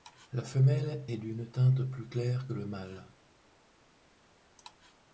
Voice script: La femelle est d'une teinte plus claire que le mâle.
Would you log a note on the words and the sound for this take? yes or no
no